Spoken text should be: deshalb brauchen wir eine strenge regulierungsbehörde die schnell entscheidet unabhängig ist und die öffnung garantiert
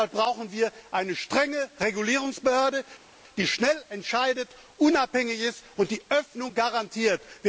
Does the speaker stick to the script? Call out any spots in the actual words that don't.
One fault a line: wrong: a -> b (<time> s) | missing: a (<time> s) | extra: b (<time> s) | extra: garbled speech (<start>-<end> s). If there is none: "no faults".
no faults